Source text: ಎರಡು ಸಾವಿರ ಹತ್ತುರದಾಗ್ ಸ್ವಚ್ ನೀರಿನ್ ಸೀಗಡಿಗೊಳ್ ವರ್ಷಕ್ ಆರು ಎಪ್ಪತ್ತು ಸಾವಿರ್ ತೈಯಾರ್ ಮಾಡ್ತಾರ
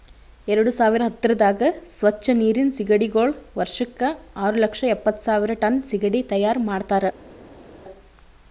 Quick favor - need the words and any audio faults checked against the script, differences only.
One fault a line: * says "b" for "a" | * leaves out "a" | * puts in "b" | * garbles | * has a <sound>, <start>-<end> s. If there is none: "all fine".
* puts in "ಲಕ್ಷ"
* puts in "ಟನ್ ಸೀಗಡಿ"